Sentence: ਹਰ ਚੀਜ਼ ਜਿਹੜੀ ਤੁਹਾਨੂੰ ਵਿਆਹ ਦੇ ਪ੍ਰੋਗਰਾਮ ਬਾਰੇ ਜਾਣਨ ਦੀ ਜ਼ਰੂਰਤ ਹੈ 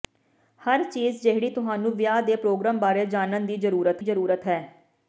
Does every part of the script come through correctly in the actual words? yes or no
no